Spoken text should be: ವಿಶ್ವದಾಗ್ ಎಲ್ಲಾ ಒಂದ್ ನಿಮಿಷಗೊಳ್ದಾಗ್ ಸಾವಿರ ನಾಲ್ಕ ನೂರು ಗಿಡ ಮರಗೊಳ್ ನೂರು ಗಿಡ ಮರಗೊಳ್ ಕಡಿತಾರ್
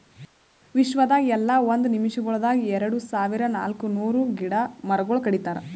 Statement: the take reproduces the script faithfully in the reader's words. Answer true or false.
false